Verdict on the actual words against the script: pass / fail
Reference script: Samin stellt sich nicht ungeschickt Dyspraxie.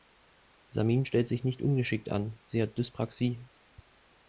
fail